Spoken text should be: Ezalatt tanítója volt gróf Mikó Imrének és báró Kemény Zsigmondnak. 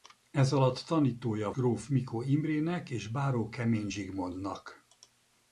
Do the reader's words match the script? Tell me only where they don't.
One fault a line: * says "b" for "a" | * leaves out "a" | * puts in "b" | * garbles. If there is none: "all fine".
* leaves out "volt"